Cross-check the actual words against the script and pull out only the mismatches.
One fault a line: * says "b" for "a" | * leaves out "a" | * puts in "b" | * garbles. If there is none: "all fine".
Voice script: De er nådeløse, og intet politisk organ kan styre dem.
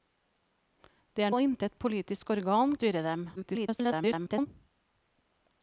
* leaves out "nådeløse"
* leaves out "kan"
* garbles